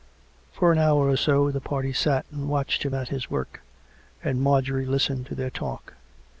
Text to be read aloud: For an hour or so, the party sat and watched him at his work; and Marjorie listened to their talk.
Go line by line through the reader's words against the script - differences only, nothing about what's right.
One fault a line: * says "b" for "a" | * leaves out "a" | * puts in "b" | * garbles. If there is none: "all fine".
all fine